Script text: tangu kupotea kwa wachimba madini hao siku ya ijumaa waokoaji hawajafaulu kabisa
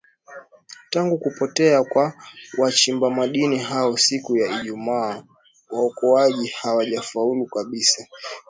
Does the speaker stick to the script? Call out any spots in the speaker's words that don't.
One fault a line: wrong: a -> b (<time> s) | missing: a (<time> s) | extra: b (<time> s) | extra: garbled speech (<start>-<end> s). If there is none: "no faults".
no faults